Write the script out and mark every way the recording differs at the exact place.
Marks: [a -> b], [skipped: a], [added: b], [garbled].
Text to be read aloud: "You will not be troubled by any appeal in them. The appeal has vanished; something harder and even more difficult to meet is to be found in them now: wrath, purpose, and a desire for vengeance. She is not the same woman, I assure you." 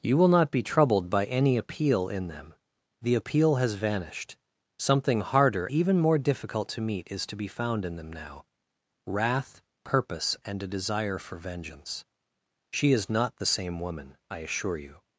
"You will not be troubled by any appeal in them. The appeal has vanished; something harder [skipped: and] even more difficult to meet is to be found in them now: wrath, purpose, and a desire for vengeance. She is not the same woman, I assure you."